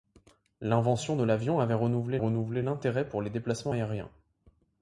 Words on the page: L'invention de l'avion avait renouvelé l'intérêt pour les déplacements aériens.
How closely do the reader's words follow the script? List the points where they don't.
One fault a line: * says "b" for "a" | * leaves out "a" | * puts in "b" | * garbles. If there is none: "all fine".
* puts in "renouvelé"